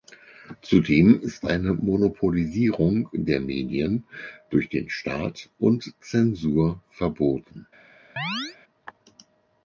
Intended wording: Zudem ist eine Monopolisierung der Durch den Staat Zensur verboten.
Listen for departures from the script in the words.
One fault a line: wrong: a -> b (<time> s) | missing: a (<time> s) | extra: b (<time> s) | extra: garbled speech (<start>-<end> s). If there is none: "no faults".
extra: Medien (3.4 s)
extra: und (5.6 s)